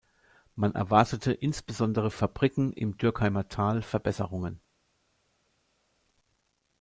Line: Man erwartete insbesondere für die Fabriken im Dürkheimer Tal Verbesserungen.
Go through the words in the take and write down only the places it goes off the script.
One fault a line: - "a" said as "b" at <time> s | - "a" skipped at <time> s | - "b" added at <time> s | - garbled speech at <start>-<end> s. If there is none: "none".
- "für die" skipped at 2.1 s